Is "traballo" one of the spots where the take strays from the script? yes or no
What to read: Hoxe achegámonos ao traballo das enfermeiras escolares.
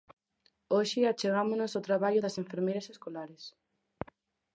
no